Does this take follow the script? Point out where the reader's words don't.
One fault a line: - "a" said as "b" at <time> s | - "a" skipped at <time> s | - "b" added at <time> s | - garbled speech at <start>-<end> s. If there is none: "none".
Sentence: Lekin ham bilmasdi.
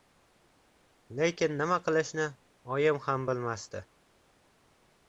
- "nima qilishni oyim" added at 1.6 s